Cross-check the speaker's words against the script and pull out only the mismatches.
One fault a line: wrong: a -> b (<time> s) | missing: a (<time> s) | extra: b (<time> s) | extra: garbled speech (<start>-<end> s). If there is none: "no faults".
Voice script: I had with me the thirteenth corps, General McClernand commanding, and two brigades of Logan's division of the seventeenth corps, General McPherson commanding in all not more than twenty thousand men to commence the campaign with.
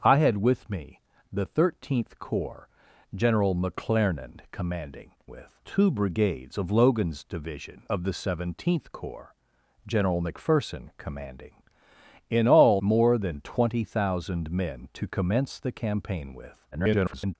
wrong: and -> with (5.3 s)
missing: not (12.8 s)
extra: garbled speech (16.7-17.4 s)